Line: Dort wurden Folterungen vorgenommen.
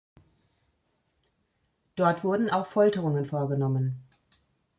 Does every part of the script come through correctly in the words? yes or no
no